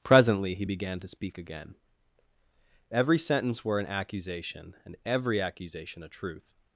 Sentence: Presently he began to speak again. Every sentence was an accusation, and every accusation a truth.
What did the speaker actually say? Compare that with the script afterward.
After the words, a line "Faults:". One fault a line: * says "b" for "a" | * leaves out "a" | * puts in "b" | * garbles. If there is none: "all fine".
Presently he began to speak again. Every sentence were an accusation, and every accusation a truth.
Faults:
* says "were" for "was"